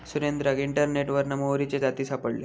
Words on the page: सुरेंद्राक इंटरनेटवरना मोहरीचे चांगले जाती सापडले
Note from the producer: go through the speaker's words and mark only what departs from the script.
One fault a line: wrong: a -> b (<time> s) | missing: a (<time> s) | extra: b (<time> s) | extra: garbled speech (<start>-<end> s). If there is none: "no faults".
missing: चांगले (1.8 s)